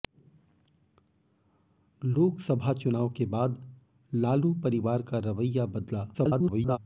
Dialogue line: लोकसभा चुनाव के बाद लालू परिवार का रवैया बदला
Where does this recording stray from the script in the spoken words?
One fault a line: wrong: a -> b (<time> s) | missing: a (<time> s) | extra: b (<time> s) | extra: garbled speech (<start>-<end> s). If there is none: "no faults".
extra: garbled speech (6.1-6.8 s)